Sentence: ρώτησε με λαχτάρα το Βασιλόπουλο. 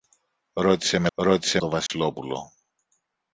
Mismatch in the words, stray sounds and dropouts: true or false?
true